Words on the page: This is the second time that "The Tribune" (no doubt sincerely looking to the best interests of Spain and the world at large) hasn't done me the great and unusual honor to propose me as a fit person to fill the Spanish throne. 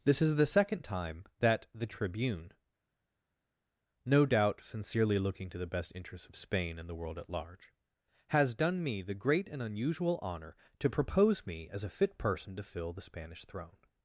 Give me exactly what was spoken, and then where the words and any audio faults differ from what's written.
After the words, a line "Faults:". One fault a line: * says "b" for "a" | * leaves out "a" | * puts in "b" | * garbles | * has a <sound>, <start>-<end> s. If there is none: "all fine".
This is the second time that "The Tribune" (no doubt sincerely looking to the best interests of Spain and the world at large) has done me the great and unusual honor to propose me as a fit person to fill the Spanish throne.
Faults:
* says "has" for "hasn't"